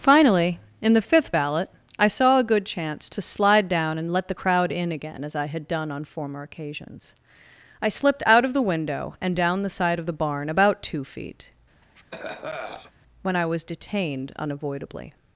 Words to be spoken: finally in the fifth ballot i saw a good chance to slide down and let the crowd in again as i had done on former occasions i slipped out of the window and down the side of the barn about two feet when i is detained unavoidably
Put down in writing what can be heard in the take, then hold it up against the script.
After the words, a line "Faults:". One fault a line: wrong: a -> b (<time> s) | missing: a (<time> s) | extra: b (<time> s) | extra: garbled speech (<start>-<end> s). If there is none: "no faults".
finally in the fifth ballot i saw a good chance to slide down and let the crowd in again as i had done on former occasions i slipped out of the window and down the side of the barn about two feet when i was detained unavoidably
Faults:
wrong: is -> was (13.5 s)